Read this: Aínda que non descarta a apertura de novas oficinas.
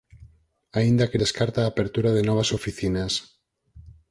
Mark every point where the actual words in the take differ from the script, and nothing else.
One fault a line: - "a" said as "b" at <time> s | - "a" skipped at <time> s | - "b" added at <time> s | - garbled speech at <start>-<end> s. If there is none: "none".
- "non" skipped at 1.2 s